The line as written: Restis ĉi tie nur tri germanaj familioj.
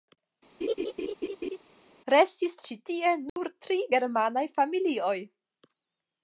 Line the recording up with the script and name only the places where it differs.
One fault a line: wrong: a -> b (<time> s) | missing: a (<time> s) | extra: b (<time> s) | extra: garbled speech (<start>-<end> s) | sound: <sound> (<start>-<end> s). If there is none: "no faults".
sound: laugh (0.6-1.6 s)
sound: dropout (3.3-3.4 s)